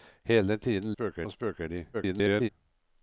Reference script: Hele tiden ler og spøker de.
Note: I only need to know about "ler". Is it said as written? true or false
false